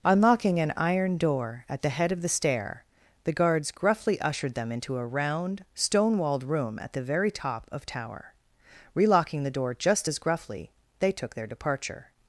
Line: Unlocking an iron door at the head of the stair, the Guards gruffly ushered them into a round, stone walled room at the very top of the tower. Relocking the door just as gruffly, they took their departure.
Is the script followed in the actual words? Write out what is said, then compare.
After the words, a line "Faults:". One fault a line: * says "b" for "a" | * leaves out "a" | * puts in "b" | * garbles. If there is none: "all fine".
Unlocking an iron door at the head of the stair, the Guards gruffly ushered them into a round, stone walled room at the very top of tower. Relocking the door just as gruffly, they took their departure.
Faults:
* leaves out "the"